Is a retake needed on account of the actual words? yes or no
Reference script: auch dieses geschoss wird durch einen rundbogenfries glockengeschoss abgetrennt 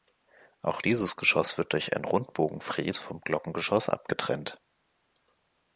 yes